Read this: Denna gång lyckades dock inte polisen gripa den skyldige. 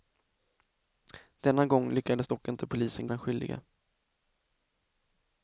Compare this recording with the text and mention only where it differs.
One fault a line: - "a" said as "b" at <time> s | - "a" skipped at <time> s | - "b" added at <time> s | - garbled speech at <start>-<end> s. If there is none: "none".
- "gripa" skipped at 3.1 s